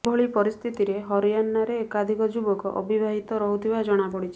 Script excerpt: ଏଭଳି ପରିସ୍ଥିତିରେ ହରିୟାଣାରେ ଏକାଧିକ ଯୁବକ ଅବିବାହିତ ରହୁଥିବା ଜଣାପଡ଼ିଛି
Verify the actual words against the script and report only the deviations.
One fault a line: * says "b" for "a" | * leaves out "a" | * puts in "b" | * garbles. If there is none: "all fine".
all fine